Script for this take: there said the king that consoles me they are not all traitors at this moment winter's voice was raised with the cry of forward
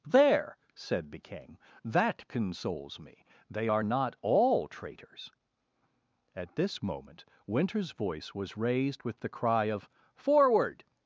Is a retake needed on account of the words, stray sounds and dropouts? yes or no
no